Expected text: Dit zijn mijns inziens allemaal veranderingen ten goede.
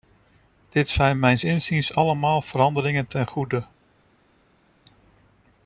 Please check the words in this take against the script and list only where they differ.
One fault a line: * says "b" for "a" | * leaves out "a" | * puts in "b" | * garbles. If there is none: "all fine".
all fine